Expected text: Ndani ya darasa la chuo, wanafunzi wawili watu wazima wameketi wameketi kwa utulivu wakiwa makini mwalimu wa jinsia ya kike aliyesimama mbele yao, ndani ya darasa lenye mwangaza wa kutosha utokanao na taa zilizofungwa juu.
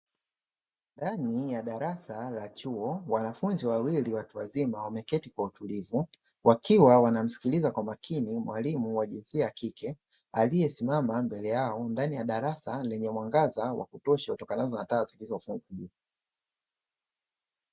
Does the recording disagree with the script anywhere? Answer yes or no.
yes